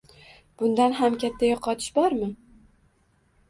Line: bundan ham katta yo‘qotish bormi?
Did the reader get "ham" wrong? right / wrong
right